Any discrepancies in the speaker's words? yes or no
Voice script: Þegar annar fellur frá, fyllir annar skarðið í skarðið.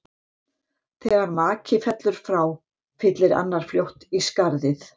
yes